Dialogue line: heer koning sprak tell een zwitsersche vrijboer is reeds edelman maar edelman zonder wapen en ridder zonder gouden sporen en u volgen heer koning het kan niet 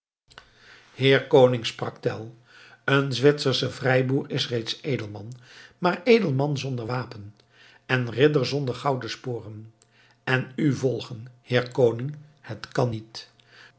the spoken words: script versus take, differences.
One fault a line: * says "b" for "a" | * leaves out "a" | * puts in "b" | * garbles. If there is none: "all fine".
all fine